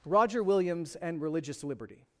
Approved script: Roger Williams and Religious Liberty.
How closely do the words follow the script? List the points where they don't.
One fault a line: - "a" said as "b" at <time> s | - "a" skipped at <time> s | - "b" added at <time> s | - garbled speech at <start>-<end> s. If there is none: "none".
none